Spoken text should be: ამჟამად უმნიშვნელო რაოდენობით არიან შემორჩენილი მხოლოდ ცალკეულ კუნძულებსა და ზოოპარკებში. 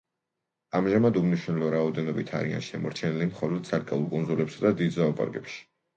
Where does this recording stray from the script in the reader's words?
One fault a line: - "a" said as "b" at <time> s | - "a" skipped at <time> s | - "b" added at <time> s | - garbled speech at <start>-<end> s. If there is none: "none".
- "დიდ" added at 4.8 s